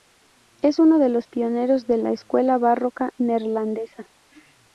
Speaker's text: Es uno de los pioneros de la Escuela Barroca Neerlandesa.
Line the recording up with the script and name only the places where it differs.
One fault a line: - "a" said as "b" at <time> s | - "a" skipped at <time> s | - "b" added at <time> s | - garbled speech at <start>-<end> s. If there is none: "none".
none